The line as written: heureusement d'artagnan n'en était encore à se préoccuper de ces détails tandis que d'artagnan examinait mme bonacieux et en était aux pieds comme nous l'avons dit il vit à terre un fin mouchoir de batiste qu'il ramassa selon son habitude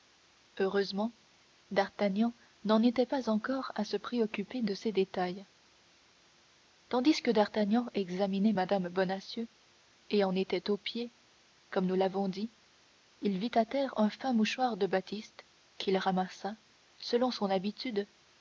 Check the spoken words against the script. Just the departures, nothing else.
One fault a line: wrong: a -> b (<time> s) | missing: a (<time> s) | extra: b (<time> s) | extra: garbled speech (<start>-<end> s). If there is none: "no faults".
extra: pas (3.1 s)